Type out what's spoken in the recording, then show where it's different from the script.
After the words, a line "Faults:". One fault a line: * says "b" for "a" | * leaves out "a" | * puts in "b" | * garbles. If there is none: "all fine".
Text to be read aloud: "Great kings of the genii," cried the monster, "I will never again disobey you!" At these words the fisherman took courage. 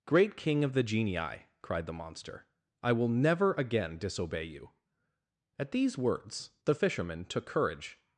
"Great king of the genii," cried the monster, "I will never again disobey you!" At these words the fisherman took courage.
Faults:
* says "king" for "kings"